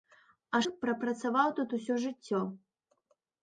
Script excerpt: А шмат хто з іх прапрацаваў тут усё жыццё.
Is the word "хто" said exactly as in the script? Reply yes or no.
no